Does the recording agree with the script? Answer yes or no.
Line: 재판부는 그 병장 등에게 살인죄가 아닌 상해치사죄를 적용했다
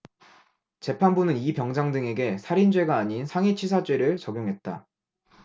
no